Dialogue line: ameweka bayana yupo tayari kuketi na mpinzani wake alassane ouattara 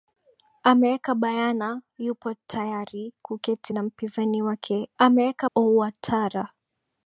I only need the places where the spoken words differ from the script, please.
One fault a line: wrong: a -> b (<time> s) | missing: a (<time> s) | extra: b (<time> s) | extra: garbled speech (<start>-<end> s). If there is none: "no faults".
wrong: alassane -> ameweka (5.0 s)